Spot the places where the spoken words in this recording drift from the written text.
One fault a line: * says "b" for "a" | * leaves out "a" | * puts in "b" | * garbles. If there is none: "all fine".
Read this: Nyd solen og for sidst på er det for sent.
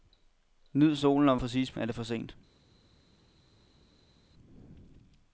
all fine